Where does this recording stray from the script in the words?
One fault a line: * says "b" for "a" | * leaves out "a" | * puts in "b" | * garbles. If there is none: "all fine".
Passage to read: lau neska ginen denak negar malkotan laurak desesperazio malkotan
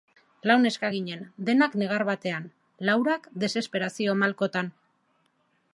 * says "batean" for "malkotan"